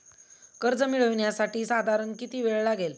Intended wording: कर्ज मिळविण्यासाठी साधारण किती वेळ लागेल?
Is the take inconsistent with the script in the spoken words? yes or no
no